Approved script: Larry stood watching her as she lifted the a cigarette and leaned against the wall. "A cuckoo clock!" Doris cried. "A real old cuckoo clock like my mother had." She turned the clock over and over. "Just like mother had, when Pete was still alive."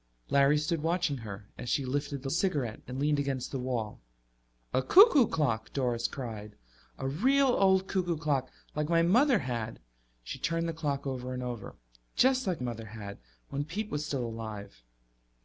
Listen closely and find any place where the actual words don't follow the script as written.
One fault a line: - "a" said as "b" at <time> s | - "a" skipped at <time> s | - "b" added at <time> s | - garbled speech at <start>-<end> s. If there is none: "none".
none